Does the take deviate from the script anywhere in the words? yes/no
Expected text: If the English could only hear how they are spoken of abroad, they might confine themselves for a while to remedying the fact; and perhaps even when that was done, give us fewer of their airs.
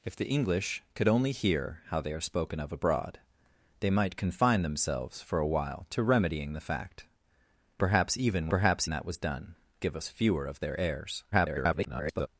yes